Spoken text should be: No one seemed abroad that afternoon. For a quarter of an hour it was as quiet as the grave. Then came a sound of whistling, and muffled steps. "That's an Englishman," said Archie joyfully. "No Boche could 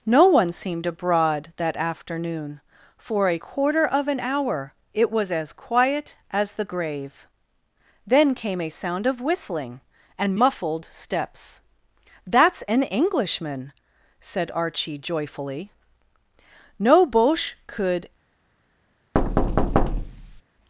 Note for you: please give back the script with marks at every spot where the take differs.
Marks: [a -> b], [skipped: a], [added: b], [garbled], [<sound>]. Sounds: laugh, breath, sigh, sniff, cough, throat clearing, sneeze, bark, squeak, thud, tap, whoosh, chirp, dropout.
No one seemed abroad that afternoon. For a quarter of an hour it was as quiet as the grave. Then came a sound of whistling, and muffled steps. "That's an Englishman," said Archie joyfully. "No Boche could [thud]